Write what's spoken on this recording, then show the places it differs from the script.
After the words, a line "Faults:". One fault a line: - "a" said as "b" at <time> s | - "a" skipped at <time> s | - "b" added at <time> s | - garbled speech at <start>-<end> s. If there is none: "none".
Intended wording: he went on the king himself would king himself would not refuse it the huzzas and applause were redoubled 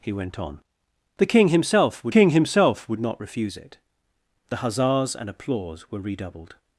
he went on the king himself would king himself would not refuse it the huzzas and applause were redoubled
Faults:
none